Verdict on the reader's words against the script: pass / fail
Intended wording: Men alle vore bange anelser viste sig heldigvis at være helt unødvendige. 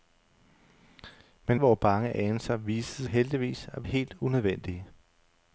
fail